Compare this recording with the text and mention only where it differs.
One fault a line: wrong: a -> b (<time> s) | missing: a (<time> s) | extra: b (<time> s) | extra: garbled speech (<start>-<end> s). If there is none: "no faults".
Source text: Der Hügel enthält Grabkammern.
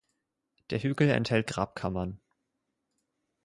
no faults